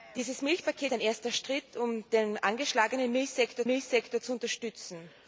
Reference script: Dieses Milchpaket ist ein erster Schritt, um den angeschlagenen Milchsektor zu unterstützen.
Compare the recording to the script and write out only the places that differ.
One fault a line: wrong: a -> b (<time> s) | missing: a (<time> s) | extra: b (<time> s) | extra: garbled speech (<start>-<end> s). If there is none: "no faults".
missing: ist (0.9 s)
extra: Milchsektor (3.7 s)